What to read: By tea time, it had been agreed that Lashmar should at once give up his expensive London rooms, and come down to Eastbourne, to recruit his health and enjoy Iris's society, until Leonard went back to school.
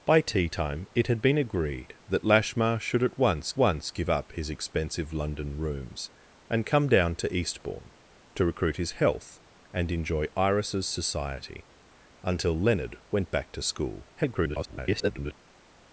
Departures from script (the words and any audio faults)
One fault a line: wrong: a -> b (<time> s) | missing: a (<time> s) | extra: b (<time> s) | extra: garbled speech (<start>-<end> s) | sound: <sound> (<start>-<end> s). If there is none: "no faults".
extra: once (3.6 s)
extra: garbled speech (14.2-15.3 s)